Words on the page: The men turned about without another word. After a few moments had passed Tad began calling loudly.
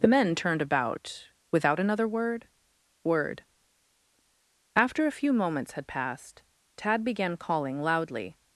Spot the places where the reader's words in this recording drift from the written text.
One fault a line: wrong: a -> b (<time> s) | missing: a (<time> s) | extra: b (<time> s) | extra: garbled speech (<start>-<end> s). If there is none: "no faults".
extra: word (3.0 s)